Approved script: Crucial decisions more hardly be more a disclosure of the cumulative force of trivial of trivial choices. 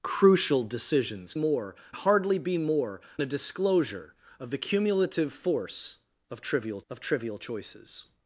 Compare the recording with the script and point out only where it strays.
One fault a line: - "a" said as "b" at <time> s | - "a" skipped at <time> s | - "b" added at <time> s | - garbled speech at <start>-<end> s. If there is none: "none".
none